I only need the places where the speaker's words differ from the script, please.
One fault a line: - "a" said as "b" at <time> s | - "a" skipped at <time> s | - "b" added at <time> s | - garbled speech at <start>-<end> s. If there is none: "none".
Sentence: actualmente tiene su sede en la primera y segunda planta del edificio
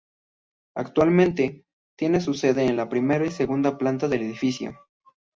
none